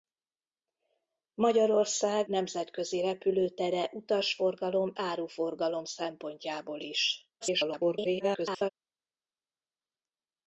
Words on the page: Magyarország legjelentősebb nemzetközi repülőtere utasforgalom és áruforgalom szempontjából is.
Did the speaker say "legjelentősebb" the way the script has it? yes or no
no